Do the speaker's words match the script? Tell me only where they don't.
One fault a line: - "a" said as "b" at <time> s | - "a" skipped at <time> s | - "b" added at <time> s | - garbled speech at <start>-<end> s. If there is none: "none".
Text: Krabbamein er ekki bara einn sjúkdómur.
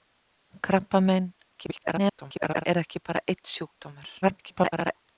- garbled speech at 1.6-2.6 s
- garbled speech at 4.2-5.1 s